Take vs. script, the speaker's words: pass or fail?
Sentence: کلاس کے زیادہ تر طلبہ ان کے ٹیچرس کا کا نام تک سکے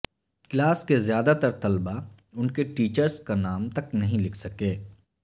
fail